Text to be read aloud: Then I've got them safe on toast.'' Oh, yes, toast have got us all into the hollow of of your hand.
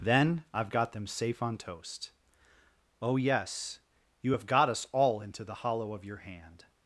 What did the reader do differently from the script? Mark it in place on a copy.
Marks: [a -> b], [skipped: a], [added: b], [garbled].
Then I've got them safe on toast.'' Oh, yes, [toast -> you] have got us all into the hollow of [skipped: of] your hand.